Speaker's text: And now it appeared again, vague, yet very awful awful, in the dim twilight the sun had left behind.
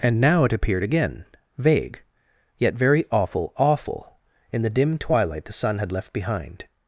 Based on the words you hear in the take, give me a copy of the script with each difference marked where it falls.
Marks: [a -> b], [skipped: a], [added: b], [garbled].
And now it appeared again, vague, yet very awful awful, in the dim twilight the sun had left behind.